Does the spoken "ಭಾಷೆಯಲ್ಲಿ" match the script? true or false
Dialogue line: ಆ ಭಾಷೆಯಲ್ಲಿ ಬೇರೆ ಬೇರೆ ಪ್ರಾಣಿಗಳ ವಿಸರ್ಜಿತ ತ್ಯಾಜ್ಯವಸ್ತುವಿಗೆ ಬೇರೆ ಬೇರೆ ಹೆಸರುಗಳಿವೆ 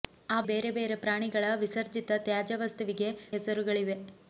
false